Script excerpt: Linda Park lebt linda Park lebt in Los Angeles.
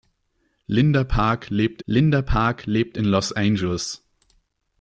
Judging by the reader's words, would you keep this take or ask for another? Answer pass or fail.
pass